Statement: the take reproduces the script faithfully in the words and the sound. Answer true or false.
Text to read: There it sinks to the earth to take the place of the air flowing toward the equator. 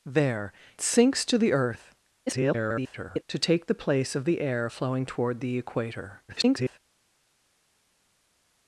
false